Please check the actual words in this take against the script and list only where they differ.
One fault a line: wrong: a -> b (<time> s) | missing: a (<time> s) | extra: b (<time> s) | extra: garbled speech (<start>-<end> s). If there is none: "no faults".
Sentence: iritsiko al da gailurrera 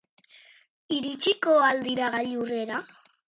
wrong: da -> dira (1.9 s)